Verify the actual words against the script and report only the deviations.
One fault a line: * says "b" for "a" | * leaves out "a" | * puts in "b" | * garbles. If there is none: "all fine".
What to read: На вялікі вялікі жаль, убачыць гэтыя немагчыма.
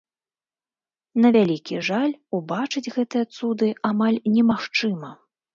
* leaves out "вялікі"
* puts in "цуды амаль"